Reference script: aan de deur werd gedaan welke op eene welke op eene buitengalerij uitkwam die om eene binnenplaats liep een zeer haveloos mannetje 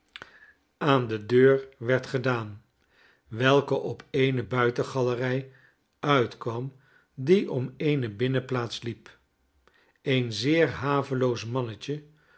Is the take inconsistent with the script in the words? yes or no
yes